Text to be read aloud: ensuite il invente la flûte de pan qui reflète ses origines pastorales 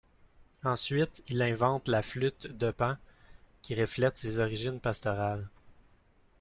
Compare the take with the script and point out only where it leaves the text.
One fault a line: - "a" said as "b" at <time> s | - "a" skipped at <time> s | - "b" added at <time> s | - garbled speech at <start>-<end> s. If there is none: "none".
none